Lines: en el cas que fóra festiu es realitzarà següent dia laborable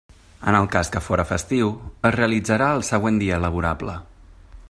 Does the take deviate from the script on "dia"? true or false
false